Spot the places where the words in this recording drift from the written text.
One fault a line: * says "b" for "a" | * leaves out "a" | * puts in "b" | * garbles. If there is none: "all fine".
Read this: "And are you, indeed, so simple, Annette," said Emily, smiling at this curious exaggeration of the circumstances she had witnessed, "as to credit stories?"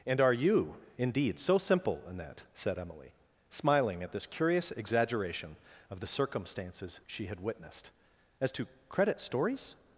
all fine